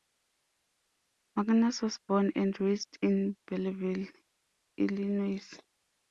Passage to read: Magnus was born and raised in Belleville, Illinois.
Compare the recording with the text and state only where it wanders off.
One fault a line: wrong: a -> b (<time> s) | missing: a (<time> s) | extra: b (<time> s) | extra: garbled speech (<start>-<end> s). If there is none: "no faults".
no faults